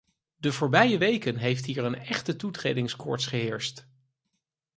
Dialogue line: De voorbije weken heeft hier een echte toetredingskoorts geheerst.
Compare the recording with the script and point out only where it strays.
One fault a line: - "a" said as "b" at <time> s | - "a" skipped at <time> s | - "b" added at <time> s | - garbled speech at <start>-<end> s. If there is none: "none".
none